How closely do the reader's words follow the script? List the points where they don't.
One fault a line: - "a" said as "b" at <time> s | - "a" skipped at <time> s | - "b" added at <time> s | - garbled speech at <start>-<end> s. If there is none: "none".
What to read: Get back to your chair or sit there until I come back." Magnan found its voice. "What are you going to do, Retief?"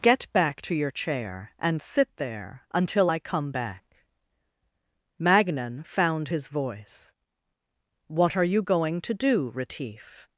- "or" said as "and" at 1.6 s
- "its" said as "his" at 6.3 s